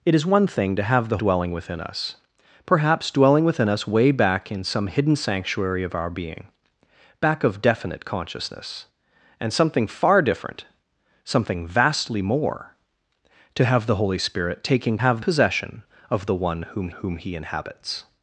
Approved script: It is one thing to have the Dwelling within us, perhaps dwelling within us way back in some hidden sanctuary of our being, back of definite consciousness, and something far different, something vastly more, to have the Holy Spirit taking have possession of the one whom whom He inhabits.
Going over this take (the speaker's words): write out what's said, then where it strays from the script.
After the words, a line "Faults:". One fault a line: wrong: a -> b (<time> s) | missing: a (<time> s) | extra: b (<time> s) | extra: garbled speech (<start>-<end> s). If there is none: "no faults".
It is one thing to have the Dwelling within us, perhaps dwelling within us way back in some hidden sanctuary of our being, back of definite consciousness, and something far different, something vastly more, to have the Holy Spirit taking have possession of the one whom whom He inhabits.
Faults:
no faults